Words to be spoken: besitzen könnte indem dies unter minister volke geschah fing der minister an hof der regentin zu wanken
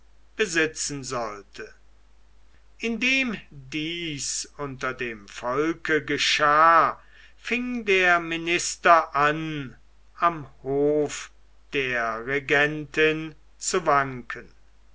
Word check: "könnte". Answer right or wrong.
wrong